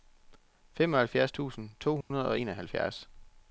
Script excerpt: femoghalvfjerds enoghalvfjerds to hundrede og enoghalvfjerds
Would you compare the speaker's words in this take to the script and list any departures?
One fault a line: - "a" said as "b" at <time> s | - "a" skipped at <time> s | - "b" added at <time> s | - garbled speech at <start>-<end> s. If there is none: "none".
- "enoghalvfjerds" said as "tusind" at 1.3 s